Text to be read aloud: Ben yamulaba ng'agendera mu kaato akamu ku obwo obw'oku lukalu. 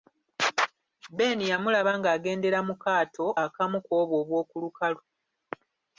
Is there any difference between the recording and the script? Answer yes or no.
no